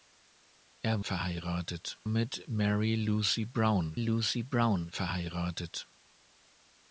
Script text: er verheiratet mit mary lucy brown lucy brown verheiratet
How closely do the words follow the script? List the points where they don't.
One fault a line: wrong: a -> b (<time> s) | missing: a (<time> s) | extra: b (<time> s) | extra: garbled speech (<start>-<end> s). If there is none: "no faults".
no faults